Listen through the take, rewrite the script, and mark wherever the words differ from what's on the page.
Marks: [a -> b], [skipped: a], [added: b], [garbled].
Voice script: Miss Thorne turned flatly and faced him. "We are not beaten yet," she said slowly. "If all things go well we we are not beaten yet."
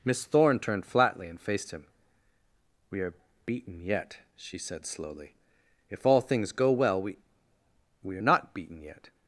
Miss Thorne turned flatly and faced him. "We are [skipped: not] beaten yet," she said slowly. "If all things go well we we are not beaten yet."